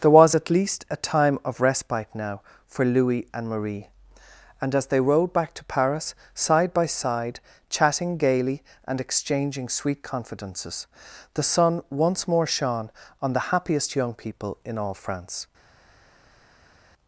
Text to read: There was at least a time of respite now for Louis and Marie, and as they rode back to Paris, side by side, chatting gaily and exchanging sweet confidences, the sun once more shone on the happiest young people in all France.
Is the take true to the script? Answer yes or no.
yes